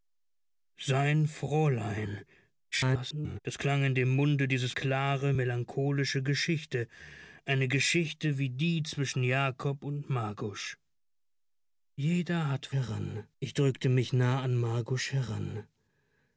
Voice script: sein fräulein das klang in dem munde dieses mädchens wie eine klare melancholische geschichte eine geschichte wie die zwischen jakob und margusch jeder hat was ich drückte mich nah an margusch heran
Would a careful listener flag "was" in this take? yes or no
yes